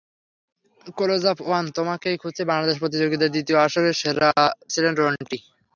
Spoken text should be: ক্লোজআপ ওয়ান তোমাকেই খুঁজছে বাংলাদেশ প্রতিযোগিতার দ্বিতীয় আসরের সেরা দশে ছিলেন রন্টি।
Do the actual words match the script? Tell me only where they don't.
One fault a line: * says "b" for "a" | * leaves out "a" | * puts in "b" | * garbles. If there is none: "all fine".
* leaves out "দশে"